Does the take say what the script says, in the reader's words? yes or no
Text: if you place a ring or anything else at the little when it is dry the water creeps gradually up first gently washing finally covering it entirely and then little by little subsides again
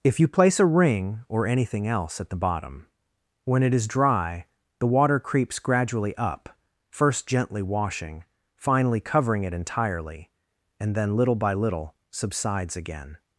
no